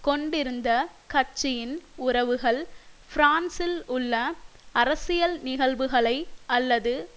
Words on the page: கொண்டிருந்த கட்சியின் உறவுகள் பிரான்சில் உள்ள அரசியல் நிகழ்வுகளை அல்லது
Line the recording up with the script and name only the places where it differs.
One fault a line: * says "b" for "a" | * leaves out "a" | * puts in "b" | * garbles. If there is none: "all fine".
all fine